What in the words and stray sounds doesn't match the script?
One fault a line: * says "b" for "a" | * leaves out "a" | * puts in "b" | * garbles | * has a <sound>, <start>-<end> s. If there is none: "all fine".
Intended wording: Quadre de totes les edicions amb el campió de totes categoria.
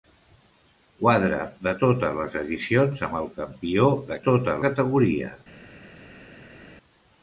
all fine